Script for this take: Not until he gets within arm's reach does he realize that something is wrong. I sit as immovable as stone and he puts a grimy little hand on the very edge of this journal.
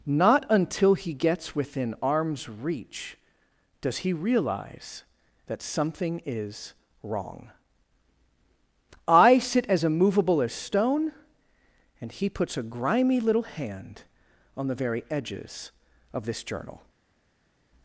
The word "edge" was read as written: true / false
false